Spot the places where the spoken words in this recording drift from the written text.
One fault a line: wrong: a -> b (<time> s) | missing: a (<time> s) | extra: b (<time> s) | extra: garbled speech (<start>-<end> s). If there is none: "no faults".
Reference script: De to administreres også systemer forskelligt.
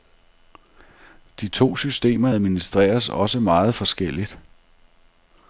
extra: systemer (1.8 s)
wrong: systemer -> meget (3.4 s)